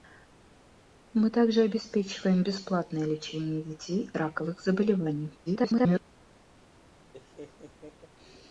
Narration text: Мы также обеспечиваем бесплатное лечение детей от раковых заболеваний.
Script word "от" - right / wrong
wrong